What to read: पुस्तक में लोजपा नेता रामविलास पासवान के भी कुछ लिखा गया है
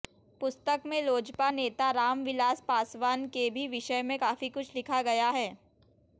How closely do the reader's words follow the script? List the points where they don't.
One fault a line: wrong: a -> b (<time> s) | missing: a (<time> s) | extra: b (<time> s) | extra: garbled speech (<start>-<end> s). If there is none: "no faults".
extra: विषय में काफी (3.7 s)